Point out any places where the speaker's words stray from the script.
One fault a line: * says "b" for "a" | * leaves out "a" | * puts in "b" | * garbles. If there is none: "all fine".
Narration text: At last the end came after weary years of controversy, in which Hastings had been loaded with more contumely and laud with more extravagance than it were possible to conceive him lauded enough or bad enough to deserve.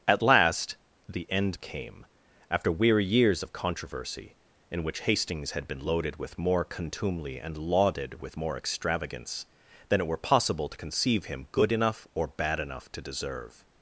* says "lauded" for "laud"
* says "good" for "lauded"